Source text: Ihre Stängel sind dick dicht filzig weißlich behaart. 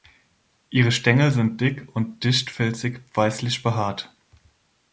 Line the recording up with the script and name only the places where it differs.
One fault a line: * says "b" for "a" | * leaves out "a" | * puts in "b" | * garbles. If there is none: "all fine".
* puts in "und"